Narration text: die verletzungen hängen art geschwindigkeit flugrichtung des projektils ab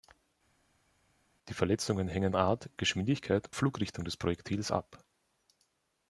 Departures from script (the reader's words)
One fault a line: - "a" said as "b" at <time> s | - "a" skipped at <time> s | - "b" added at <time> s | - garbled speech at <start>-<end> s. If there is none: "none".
none